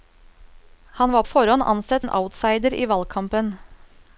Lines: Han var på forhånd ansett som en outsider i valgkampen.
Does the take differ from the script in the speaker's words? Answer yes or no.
yes